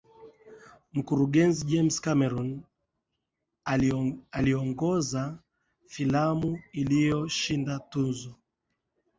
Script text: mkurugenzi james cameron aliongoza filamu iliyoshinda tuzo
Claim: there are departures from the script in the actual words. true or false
false